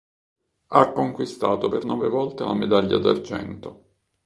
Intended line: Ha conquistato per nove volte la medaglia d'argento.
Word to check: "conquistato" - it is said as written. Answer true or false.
true